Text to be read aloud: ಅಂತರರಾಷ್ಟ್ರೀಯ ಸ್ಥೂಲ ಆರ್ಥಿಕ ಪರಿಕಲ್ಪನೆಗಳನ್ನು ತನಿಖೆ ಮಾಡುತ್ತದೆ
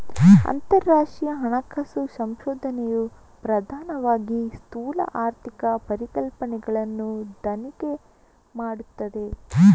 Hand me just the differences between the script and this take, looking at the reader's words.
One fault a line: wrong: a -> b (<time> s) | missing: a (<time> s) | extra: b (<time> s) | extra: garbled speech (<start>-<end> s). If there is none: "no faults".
extra: ಹಣಕಾಸು ಸಂಶೋಧನೆಯು ಪ್ರಧಾನವಾಗಿ (1.4 s)